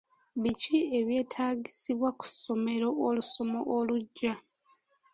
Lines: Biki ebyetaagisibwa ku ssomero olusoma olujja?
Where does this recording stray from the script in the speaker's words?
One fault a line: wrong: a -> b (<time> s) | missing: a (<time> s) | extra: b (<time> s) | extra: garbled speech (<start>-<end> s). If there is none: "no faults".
no faults